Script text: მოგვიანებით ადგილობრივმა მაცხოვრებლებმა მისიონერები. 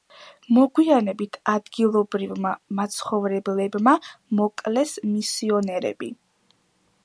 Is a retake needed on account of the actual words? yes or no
yes